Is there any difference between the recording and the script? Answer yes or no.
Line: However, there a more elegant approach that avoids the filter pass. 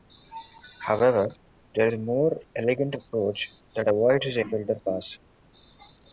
no